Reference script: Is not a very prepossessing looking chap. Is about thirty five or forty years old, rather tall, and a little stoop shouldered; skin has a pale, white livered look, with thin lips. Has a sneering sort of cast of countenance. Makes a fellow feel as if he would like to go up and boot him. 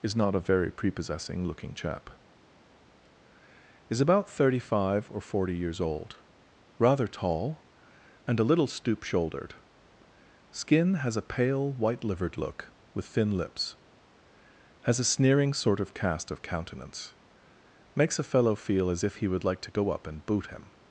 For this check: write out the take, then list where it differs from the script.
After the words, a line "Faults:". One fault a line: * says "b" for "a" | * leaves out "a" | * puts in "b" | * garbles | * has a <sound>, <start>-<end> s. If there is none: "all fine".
Is not a very prepossessing looking chap. Is about thirty five or forty years old, rather tall, and a little stoop shouldered; skin has a pale, white livered look, with thin lips. Has a sneering sort of cast of countenance. Makes a fellow feel as if he would like to go up and boot him.
Faults:
all fine